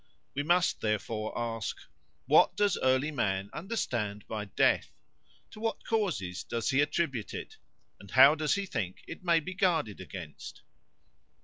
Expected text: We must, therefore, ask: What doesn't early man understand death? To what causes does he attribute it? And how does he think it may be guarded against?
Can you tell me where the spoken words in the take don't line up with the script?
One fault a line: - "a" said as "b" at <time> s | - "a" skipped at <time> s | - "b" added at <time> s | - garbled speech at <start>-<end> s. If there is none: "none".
- "doesn't" said as "does" at 2.5 s
- "by" added at 4.3 s